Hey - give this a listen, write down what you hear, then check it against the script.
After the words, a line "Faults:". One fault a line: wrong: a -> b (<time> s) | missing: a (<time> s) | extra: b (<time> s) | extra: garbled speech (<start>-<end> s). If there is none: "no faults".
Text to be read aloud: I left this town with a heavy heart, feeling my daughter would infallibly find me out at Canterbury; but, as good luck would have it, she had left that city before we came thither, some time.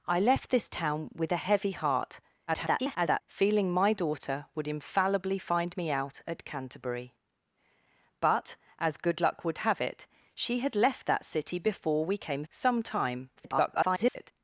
I left this town with a heavy heart, [garbled] feeling my daughter would infallibly find me out at Canterbury; but, as good luck would have it, she had left that city before we came some time. [garbled]
Faults:
extra: garbled speech (2.5-3.2 s)
missing: thither (12.4 s)
extra: garbled speech (13.4-14.3 s)